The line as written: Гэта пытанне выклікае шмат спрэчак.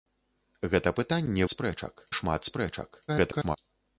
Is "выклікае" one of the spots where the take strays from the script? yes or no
yes